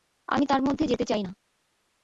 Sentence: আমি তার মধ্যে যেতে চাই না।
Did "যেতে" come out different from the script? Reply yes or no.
no